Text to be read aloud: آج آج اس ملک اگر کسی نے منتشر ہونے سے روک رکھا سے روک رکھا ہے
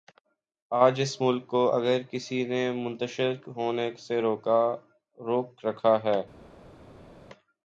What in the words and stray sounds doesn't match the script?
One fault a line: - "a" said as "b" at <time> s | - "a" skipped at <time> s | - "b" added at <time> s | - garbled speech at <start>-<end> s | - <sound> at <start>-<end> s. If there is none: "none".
- "آج" skipped at 1.0 s
- "کو" added at 1.5 s
- "سے روک رکھا" skipped at 6.0 s